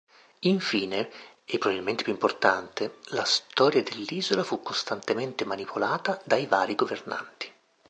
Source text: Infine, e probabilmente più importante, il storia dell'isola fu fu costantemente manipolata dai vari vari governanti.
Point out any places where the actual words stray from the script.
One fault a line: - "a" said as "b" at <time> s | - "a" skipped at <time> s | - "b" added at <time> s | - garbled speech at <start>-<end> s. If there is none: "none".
- "il" said as "la" at 3.1 s
- "fu" skipped at 4.6 s
- "vari" skipped at 6.7 s